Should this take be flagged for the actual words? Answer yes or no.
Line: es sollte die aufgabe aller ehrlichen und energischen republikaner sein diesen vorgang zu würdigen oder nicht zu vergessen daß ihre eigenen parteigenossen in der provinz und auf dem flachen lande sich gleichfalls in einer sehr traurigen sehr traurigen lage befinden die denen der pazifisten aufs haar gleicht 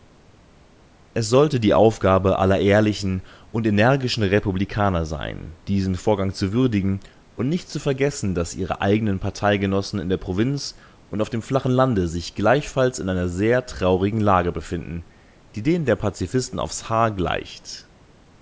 yes